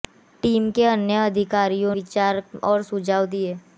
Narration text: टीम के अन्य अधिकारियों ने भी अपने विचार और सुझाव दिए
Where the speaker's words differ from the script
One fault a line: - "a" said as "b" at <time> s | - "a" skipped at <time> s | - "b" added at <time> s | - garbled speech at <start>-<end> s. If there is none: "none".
- "ने भी अपने" skipped at 1.9 s